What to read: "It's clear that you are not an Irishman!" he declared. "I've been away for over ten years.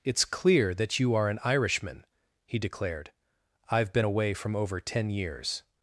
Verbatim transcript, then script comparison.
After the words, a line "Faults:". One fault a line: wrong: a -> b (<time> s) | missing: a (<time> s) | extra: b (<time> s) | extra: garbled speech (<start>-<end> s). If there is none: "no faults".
"It's clear that you are an Irishman!" he declared. "I've been away from over ten years.
Faults:
missing: not (1.3 s)
wrong: for -> from (4.3 s)